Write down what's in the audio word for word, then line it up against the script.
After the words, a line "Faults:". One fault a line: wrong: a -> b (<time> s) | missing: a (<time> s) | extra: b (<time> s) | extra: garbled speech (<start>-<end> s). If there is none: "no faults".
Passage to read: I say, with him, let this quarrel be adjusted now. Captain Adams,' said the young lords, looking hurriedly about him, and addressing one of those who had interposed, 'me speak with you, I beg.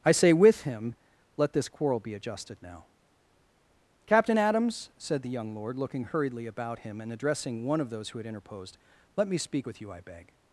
I say, with him, let this quarrel be adjusted now. Captain Adams,' said the young lord, looking hurriedly about him, and addressing one of those who had interposed, 'let me speak with you, I beg.
Faults:
wrong: lords -> lord (5.5 s)
extra: let (9.2 s)